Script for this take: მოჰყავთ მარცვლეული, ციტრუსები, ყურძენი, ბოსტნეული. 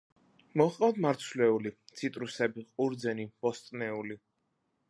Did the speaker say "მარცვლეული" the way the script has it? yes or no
yes